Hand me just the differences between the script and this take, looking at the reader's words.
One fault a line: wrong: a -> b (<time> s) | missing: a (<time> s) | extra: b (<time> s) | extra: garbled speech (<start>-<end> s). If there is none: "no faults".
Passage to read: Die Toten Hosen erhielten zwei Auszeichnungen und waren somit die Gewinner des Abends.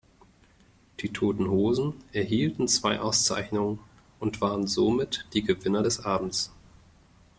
no faults